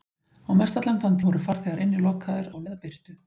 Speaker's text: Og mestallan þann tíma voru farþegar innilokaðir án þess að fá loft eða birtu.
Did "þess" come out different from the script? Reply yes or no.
yes